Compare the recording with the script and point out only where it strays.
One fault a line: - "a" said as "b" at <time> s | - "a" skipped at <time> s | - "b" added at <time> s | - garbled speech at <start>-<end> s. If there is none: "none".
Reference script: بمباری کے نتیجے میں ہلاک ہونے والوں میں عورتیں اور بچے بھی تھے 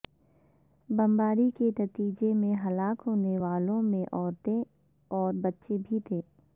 none